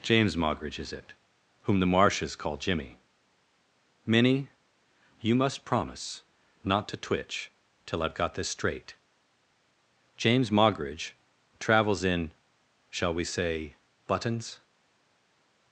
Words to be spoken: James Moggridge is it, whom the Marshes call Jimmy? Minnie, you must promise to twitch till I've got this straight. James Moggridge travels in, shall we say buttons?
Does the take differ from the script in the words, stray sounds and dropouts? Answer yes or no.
yes